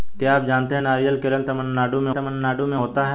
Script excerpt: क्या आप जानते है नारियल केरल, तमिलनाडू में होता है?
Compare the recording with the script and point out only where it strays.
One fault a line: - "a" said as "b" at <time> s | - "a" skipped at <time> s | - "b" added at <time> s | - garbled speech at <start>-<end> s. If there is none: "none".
- "तमिलनाडू में" added at 2.1 s